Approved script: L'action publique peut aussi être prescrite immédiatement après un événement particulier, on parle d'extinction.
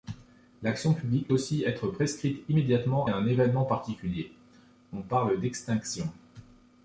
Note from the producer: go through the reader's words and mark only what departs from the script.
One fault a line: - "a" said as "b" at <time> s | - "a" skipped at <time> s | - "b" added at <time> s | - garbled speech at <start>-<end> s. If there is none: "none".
- "peut" skipped at 1.3 s
- "après" skipped at 3.1 s